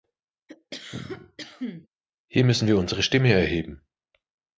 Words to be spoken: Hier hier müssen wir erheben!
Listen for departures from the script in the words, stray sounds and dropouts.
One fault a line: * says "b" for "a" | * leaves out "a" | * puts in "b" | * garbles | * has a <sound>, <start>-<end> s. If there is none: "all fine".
* has a cough, 0.5-1.9 s
* leaves out "hier"
* puts in "unsere Stimme"